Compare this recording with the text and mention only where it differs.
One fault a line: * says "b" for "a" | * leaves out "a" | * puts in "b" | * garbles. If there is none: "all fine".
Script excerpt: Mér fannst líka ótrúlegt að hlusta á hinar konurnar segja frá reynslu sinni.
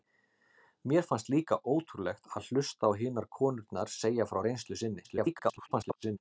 * garbles